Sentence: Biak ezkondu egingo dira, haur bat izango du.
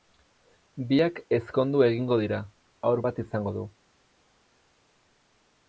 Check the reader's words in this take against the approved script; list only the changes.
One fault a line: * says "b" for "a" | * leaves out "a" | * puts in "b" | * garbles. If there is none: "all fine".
all fine